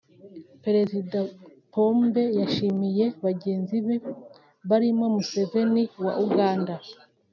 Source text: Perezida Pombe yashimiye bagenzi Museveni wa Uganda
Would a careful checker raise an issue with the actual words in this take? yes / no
yes